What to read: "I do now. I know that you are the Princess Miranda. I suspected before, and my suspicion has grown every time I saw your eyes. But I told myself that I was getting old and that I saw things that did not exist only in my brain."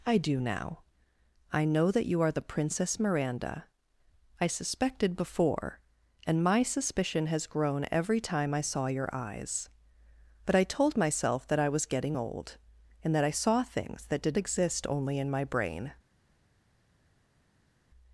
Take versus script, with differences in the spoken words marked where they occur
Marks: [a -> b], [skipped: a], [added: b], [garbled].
"I do now. I know that you are the Princess Miranda. I suspected before, and my suspicion has grown every time I saw your eyes. But I told myself that I was getting old and that I saw things that did [skipped: not] exist only in my brain."